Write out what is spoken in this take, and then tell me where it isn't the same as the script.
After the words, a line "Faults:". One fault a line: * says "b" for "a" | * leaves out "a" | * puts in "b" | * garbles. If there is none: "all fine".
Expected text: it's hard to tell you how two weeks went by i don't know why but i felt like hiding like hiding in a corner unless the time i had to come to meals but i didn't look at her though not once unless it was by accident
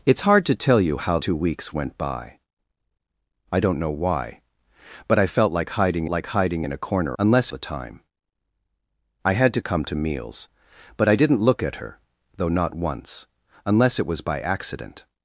it's hard to tell you how two weeks went by i don't know why but i felt like hiding like hiding in a corner unless the time i had to come to meals but i didn't look at her though not once unless it was by accident
Faults:
all fine